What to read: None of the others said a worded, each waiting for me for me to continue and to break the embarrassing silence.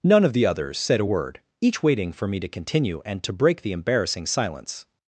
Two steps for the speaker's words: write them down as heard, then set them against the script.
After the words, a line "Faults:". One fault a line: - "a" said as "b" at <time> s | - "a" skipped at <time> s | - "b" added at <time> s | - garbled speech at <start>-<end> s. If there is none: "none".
None of the others said a word, each waiting for me to continue and to break the embarrassing silence.
Faults:
- "worded" said as "word" at 1.0 s
- "for me" skipped at 2.4 s